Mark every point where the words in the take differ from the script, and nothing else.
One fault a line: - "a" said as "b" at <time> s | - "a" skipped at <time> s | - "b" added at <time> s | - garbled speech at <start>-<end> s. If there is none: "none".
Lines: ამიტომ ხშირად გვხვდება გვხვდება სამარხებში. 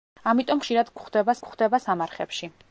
none